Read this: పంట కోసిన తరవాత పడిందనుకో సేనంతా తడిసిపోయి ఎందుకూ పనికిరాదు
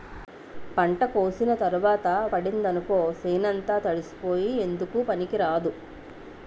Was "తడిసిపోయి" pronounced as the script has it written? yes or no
yes